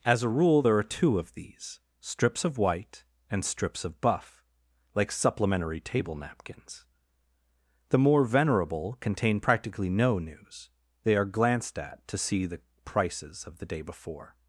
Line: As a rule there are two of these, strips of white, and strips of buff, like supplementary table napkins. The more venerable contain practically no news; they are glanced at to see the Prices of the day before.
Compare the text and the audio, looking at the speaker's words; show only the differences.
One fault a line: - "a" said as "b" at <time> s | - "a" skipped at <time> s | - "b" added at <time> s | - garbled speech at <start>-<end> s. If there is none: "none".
none